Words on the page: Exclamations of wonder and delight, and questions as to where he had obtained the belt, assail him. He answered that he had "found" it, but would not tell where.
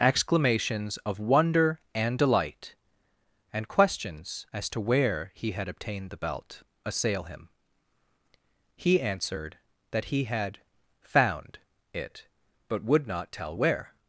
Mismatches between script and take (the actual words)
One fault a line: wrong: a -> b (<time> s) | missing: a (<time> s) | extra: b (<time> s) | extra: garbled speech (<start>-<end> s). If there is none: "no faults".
no faults